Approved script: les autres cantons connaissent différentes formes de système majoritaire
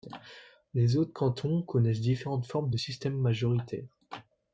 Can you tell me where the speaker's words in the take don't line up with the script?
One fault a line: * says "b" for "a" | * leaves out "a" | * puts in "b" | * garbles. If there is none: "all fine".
all fine